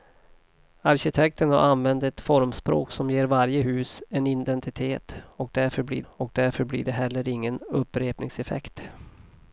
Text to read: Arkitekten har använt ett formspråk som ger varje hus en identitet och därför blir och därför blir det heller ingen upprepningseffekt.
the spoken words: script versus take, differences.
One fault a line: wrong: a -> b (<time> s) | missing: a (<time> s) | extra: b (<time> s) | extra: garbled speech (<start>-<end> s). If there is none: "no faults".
no faults